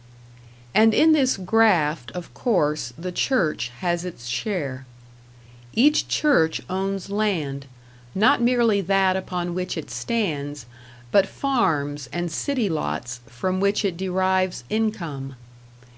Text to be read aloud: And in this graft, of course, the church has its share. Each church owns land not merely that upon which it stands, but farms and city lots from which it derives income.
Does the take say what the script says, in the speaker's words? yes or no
yes